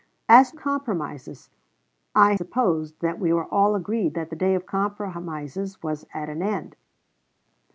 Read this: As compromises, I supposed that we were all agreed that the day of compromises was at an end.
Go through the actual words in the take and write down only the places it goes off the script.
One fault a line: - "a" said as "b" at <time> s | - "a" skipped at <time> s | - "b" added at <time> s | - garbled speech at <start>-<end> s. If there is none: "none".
none